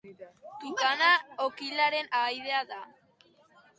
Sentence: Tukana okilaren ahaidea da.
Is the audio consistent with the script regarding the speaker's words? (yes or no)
yes